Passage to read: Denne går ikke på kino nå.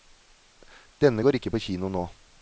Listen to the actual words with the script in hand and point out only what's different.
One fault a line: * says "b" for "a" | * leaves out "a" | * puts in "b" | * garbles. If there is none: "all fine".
all fine